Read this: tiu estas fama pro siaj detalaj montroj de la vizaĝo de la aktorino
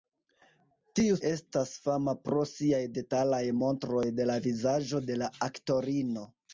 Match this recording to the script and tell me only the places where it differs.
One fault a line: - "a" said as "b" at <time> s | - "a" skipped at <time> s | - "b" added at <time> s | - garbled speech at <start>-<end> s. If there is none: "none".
none